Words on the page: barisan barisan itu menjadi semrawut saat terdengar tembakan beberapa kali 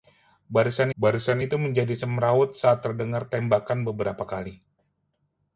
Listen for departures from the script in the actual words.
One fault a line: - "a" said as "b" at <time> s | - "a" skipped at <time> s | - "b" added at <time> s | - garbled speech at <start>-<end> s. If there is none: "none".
none